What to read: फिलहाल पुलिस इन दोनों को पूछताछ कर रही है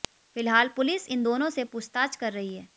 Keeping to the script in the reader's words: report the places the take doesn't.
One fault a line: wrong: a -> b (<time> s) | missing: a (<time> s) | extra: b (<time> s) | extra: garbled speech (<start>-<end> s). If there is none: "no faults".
wrong: को -> से (1.5 s)